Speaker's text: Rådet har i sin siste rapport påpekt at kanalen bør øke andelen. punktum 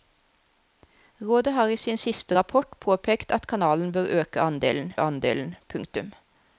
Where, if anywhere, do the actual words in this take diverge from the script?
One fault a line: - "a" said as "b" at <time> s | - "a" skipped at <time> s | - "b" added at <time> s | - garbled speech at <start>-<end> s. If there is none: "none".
- "andelen" added at 5.0 s